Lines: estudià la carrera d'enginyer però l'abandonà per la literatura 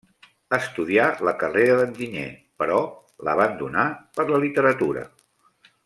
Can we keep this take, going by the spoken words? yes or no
yes